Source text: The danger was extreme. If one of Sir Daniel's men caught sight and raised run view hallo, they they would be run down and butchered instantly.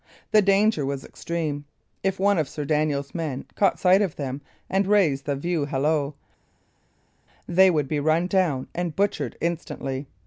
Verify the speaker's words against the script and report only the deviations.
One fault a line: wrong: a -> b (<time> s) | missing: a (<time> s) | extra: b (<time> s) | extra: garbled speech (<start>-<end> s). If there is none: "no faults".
extra: of them (4.0 s)
wrong: run -> the (5.3 s)
missing: they (7.7 s)